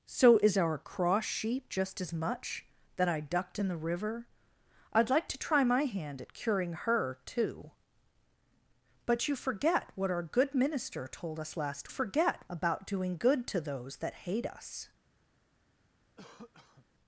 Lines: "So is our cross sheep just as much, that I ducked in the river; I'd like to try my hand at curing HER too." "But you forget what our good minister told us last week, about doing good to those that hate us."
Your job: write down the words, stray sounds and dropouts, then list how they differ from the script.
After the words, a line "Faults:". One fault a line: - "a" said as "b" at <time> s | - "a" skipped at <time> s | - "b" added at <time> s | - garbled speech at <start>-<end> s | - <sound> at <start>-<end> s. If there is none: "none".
"So is our cross sheep just as much, that I ducked in the river; I'd like to try my hand at curing HER too." "But you forget what our good minister told us last forget, about doing good to those that hate us."
Faults:
- "week" said as "forget" at 11.9 s
- cough at 16.2-16.9 s